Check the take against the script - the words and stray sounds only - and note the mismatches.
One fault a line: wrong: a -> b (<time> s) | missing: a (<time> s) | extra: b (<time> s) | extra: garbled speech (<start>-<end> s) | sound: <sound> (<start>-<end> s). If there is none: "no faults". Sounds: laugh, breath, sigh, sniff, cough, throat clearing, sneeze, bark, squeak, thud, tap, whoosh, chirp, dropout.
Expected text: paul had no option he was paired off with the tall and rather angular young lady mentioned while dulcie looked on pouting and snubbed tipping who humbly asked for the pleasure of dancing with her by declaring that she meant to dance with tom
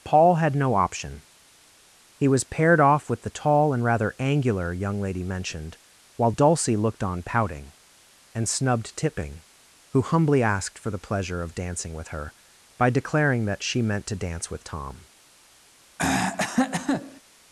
sound: throat clearing (16.0-17.2 s)